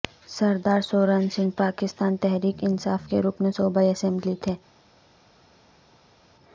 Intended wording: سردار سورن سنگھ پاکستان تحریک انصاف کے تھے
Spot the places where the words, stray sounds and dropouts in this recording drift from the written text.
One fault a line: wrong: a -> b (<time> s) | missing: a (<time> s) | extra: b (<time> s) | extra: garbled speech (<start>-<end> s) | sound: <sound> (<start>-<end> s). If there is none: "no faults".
extra: رکن صوبائی اسمبلی (3.2 s)